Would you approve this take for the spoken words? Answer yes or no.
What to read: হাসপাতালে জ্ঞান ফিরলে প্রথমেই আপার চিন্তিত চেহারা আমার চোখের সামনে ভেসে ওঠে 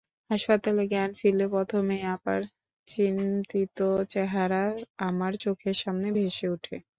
yes